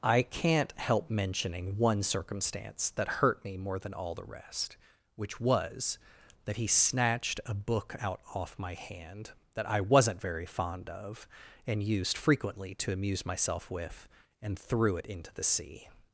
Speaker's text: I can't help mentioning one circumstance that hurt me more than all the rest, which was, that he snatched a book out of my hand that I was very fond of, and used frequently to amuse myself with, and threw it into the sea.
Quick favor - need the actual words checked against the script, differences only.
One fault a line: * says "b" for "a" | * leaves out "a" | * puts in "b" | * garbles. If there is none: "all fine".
* says "off" for "of"
* says "wasn't" for "was"